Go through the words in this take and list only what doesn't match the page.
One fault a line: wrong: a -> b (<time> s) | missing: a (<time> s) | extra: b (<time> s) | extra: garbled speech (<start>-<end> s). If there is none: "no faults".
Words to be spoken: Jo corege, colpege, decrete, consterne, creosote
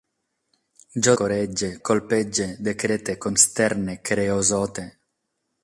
no faults